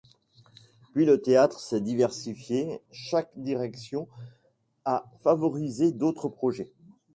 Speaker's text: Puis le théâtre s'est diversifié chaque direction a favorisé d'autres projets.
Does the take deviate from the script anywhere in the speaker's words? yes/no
no